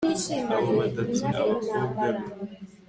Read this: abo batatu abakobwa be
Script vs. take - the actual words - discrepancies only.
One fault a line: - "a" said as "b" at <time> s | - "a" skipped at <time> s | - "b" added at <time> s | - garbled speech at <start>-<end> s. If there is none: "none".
none